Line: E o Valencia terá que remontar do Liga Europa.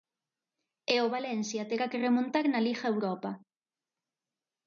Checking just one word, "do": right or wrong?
wrong